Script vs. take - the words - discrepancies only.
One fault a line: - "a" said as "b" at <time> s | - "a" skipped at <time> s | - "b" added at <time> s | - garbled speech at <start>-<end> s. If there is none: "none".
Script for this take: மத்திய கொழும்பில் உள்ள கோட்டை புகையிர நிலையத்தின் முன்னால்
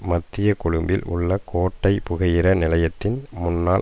none